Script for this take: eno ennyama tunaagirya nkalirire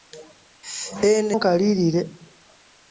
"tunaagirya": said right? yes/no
no